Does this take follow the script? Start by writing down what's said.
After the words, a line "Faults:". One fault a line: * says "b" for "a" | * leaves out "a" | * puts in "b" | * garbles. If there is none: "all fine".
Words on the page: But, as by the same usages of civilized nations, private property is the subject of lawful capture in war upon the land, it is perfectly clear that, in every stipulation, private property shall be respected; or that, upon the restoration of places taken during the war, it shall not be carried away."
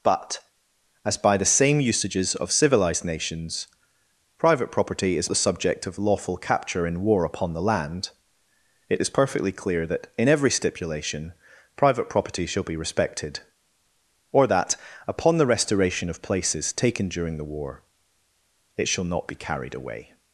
But, as by the same usages of civilized nations, private property is the subject of lawful capture in war upon the land, it is perfectly clear that, in every stipulation, private property shall be respected; or that, upon the restoration of places taken during the war, it shall not be carried away."
Faults:
all fine